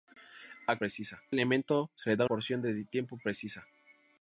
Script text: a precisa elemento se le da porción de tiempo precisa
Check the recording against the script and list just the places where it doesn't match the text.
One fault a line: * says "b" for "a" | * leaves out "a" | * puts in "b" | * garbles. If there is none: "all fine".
all fine